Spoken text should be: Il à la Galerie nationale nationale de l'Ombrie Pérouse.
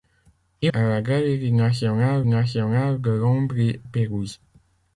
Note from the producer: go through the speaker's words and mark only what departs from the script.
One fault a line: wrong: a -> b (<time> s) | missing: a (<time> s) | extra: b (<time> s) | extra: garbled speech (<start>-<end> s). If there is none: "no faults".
no faults